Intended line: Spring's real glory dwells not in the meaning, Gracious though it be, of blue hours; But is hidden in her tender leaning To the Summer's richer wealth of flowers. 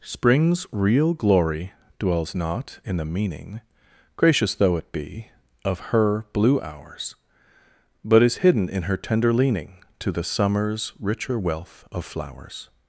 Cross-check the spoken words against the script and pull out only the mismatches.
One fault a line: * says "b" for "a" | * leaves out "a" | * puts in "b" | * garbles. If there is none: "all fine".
* puts in "her"